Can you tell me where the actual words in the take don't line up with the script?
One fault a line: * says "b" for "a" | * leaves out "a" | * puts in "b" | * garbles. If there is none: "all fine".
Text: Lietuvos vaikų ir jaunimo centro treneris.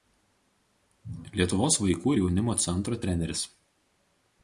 all fine